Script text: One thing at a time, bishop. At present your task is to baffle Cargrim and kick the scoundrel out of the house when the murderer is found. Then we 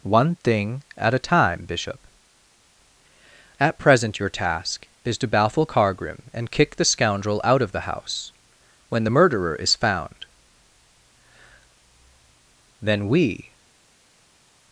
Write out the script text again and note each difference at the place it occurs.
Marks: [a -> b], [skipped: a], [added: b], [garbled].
One thing at a time, bishop. At present your task is to baffle Cargrim and kick the scoundrel out of the house when the murderer is found. Then we